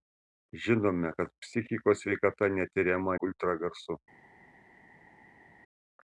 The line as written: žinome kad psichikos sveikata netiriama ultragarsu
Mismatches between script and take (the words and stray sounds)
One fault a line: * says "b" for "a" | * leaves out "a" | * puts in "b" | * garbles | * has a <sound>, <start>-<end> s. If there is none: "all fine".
all fine